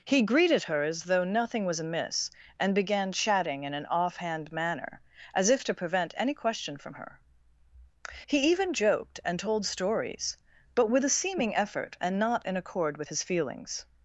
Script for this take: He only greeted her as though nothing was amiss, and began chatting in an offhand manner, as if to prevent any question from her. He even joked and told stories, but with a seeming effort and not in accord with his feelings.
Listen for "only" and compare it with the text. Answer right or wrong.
wrong